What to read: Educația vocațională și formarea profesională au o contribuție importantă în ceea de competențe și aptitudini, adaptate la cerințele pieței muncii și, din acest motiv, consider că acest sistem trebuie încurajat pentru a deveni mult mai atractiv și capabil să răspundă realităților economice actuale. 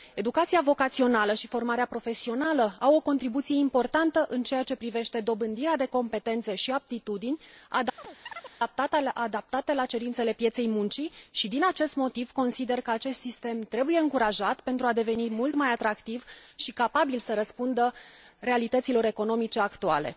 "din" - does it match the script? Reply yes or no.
yes